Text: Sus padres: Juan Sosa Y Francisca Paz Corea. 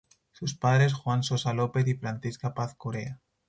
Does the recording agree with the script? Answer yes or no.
no